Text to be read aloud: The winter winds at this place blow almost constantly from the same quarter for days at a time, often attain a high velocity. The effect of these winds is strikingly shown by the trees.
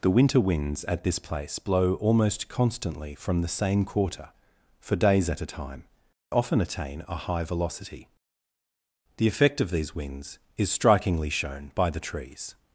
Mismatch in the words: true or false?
false